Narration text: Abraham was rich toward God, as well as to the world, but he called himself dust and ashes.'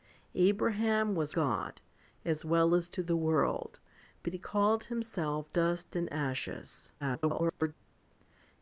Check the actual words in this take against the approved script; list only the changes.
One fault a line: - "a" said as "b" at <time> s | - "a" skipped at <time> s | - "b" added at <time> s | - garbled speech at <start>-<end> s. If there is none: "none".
- "rich toward" skipped at 1.4 s
- garbled speech at 7.0-7.7 s